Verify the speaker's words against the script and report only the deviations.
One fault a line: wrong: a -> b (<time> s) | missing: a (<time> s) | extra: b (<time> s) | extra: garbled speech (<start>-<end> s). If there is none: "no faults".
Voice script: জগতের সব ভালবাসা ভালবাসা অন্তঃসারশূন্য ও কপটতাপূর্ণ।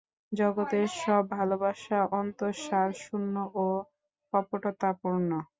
missing: ভালবাসা (2.0 s)